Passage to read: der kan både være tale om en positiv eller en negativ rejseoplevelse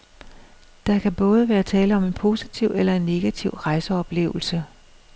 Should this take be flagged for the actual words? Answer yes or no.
no